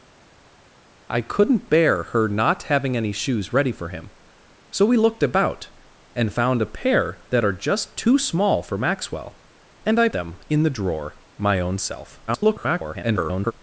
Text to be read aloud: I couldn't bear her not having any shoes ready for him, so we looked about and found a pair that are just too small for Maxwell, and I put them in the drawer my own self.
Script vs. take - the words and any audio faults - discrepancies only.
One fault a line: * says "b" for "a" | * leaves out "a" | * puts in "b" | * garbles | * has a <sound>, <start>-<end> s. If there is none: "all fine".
* leaves out "put"
* garbles